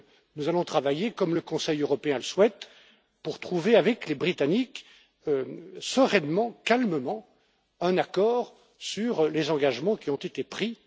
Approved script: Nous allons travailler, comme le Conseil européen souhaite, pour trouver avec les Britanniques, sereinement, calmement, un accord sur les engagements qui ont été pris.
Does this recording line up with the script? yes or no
yes